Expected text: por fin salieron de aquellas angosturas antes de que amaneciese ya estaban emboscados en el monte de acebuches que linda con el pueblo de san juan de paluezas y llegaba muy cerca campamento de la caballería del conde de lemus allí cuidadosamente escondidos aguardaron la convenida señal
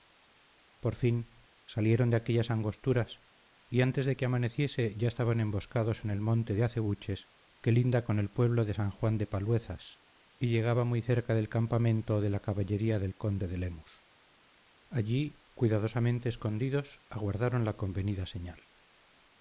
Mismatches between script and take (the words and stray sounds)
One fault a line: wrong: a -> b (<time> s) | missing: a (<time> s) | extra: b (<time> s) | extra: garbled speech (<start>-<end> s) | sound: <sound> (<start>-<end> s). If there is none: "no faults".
extra: y (3.7 s)
extra: del (11.3 s)